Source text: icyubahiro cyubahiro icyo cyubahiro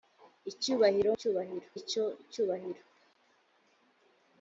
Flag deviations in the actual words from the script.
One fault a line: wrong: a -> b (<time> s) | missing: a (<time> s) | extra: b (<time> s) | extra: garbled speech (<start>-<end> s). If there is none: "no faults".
no faults